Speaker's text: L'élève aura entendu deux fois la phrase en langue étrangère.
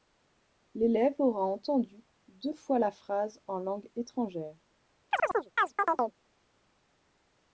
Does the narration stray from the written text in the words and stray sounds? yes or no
yes